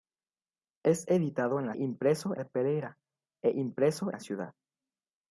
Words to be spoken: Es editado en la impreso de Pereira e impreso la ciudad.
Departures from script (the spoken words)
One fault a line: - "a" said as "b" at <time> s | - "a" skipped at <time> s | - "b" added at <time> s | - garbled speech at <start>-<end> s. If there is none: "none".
none